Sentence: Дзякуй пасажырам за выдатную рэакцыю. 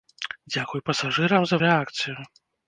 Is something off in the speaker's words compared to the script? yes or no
yes